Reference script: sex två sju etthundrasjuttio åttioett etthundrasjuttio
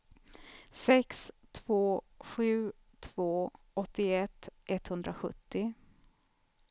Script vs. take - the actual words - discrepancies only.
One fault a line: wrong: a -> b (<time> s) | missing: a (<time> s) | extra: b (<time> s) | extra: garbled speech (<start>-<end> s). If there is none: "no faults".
wrong: etthundrasjuttio -> två (3.0 s)